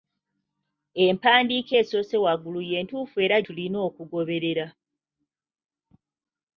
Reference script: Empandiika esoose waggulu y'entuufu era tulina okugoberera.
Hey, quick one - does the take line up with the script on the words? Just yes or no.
yes